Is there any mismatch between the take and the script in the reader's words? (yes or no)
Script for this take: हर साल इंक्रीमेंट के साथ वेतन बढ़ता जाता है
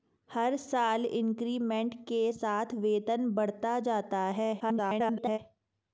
yes